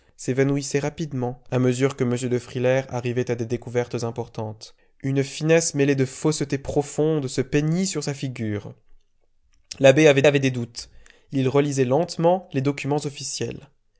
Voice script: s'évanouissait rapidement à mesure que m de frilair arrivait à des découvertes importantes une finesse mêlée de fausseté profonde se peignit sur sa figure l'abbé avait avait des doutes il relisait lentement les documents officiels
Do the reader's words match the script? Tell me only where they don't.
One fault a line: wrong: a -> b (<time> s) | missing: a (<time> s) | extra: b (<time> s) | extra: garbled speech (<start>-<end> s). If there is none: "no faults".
no faults